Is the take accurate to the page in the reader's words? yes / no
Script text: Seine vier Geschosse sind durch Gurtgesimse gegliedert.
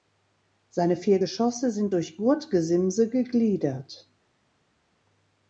yes